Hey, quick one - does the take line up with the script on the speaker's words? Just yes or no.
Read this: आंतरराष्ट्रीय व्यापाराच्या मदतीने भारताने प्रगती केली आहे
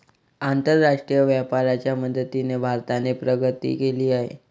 yes